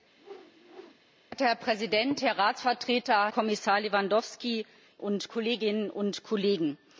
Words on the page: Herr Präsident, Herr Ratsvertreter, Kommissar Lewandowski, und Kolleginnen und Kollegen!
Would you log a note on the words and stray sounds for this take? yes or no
yes